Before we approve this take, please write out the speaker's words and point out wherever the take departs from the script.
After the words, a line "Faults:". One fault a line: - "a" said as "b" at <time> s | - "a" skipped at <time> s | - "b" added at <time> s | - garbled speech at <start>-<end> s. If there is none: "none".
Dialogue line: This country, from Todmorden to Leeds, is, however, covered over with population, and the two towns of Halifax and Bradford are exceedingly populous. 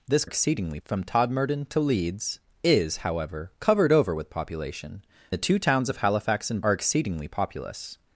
This exceedingly, from Todmorden to Leeds, is, however, covered over with population, the two towns of Halifax and Are exceedingly populous.
Faults:
- "country" said as "exceedingly" at 0.2 s
- "and" skipped at 5.0 s
- "Bradford" skipped at 6.6 s